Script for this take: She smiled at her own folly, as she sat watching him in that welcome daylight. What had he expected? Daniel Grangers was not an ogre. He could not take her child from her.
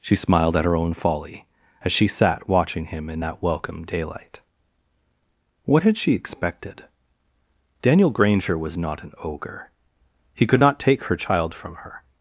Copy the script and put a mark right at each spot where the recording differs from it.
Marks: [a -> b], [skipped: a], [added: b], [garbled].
She smiled at her own folly, as she sat watching him in that welcome daylight. What had [he -> she] expected? Daniel [Grangers -> Granger] was not an ogre. He could not take her child from her.